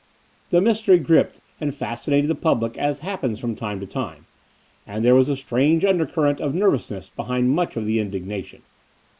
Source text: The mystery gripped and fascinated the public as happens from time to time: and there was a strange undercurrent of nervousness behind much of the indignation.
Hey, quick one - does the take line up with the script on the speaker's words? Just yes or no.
yes